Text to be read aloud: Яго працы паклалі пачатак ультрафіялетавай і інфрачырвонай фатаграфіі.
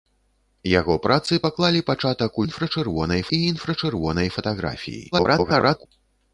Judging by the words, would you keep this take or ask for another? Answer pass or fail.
fail